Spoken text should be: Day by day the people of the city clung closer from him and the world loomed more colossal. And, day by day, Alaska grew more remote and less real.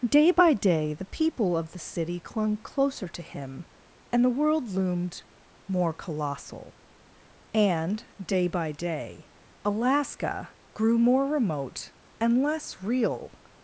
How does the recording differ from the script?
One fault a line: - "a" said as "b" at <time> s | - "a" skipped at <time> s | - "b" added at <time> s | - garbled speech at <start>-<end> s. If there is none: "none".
- "from" said as "to" at 3.1 s